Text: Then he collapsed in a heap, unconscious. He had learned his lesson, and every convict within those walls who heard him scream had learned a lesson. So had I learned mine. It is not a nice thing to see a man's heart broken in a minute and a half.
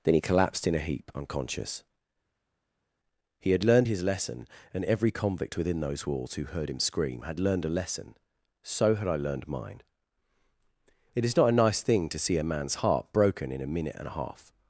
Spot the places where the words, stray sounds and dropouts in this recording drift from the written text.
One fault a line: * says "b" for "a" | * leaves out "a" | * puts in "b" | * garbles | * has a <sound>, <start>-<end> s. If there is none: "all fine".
all fine